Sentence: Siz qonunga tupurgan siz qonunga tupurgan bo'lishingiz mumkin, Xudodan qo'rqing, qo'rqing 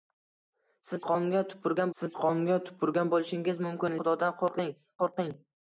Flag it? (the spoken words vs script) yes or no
no